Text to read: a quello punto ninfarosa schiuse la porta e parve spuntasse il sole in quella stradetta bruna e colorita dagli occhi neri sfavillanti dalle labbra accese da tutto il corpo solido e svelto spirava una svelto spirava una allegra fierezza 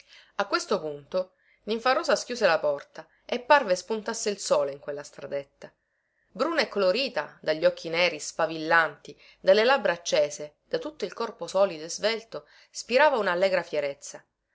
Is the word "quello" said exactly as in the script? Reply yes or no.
no